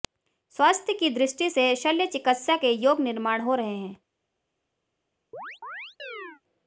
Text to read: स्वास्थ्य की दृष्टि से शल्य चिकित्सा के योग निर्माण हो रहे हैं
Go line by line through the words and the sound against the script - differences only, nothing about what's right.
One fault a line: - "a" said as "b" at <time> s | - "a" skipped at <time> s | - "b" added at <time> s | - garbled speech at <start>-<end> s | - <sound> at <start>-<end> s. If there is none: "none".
- chirp at 5.3-6.4 s